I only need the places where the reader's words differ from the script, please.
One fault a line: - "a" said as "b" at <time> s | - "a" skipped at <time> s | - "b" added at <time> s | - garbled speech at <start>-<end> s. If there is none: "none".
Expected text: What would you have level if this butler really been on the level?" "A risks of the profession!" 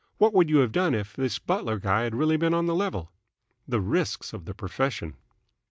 - "level" said as "done" at 0.7 s
- "guy had" added at 1.8 s
- "A" said as "The" at 3.7 s